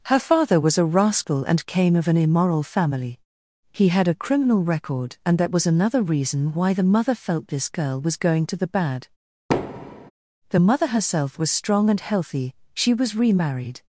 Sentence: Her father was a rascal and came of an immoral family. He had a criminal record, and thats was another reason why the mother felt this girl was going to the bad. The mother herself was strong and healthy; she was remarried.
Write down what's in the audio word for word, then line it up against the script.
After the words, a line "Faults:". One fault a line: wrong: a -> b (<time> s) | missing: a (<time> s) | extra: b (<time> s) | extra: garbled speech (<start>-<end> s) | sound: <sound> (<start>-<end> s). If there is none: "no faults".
Her father was a rascal and came of an immoral family. He had a criminal record, and that was another reason why the mother felt this girl was going to the bad. The mother herself was strong and healthy; she was remarried.
Faults:
wrong: thats -> that (5.4 s)
sound: thud (9.5-10.1 s)